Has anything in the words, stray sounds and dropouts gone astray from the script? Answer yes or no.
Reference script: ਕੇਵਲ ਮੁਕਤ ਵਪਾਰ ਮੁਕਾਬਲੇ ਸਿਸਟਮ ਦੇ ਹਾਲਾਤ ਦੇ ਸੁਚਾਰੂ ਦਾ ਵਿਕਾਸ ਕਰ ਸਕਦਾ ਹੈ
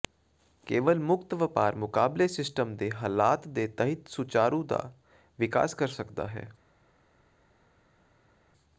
yes